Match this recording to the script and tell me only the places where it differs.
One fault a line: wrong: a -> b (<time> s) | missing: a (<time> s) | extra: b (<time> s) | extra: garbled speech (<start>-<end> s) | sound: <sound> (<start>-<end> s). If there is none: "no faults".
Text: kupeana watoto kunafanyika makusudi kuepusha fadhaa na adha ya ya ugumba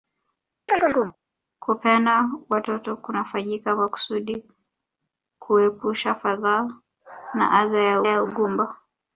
sound: chirp (0.7-1.2 s)